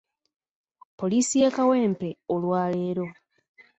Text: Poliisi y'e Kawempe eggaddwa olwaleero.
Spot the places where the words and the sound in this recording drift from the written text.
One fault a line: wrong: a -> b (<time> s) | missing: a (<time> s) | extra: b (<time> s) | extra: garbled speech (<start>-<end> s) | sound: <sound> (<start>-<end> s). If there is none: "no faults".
missing: eggaddwa (2.1 s)